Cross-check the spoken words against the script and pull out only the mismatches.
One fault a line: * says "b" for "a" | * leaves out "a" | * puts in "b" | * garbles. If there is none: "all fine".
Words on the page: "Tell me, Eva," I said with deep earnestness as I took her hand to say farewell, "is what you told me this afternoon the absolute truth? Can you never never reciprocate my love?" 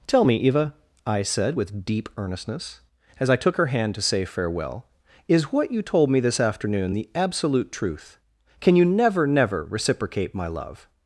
all fine